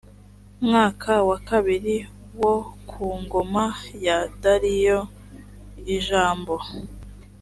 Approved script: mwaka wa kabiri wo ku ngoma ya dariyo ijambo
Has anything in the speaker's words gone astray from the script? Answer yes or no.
no